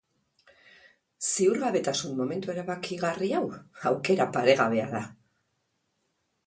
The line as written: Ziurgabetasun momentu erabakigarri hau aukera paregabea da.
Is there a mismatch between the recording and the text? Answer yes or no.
no